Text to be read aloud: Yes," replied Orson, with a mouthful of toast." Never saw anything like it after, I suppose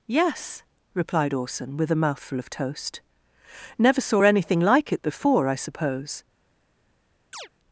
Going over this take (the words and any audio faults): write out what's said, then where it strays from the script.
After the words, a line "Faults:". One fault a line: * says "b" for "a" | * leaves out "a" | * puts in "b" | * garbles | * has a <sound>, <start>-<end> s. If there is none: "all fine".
Yes," replied Orson, with a mouthful of toast." Never saw anything like it before, I suppose
Faults:
* says "before" for "after"
* has a chirp, 7.3-7.5 s